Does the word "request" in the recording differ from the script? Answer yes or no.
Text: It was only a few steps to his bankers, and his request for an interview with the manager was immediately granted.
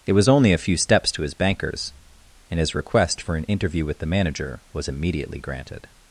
no